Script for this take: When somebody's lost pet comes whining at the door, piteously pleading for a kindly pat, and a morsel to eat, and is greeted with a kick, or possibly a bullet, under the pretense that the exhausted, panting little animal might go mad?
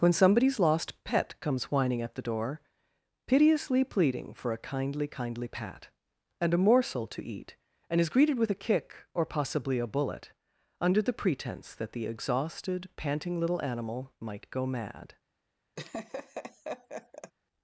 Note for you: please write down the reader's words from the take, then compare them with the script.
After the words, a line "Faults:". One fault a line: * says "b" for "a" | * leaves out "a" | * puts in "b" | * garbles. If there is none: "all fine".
When somebody's lost pet comes whining at the door, piteously pleading for a kindly kindly pat, and a morsel to eat, and is greeted with a kick, or possibly a bullet, under the pretense that the exhausted, panting little animal might go mad?
Faults:
* puts in "kindly"